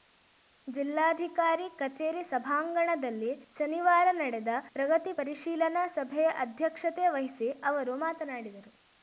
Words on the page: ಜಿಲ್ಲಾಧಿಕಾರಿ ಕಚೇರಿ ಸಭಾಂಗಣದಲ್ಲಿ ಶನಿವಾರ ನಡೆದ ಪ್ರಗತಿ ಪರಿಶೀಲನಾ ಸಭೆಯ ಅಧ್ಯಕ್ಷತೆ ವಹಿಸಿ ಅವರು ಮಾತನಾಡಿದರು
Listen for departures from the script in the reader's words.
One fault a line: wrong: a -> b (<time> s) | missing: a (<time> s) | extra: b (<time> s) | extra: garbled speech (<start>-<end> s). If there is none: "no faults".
no faults